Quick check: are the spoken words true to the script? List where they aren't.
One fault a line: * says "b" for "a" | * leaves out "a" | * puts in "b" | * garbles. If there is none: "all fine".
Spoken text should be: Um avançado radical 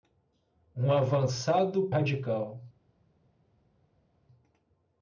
all fine